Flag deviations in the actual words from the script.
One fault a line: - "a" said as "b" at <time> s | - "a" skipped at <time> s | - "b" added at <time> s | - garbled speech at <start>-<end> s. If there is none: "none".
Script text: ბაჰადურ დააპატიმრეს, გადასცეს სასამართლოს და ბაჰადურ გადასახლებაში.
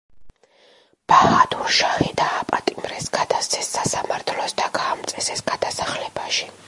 - "შაჰი" added at 1.8 s
- "ბაჰადურ" said as "გაამწესეს" at 4.8 s